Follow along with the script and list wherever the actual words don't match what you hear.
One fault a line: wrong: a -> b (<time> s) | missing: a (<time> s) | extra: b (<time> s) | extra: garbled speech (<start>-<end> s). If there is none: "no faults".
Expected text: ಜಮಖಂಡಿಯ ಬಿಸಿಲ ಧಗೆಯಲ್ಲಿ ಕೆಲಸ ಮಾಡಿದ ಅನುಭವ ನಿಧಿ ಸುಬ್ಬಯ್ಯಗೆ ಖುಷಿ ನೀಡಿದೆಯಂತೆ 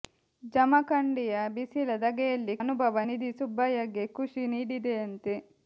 missing: ಕೆಲಸ ಮಾಡಿದ (2.5 s)